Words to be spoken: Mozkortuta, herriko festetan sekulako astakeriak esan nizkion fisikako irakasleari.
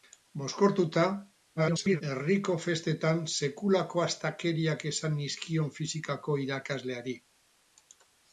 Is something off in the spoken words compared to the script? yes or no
yes